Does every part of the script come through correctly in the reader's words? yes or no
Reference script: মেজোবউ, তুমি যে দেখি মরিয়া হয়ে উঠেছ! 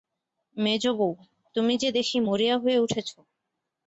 yes